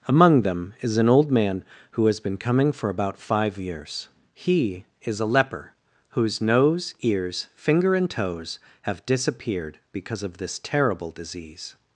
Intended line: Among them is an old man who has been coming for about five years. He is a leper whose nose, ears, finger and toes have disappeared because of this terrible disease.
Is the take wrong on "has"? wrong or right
right